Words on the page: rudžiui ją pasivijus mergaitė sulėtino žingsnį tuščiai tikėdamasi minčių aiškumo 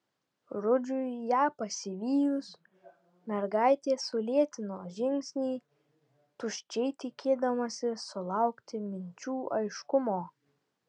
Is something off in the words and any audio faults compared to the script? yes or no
yes